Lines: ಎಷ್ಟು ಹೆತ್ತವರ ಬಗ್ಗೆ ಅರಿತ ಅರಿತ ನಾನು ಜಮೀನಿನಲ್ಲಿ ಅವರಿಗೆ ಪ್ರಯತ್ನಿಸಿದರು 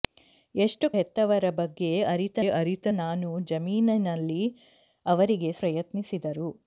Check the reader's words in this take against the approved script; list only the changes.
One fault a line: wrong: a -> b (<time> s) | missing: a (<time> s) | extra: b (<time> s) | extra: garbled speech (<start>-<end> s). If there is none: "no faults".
no faults